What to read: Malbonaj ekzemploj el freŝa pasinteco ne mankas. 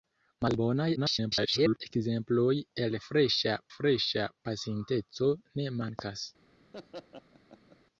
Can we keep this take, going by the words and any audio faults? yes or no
no